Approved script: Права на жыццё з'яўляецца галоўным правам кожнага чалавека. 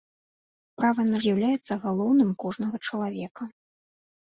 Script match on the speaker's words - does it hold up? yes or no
no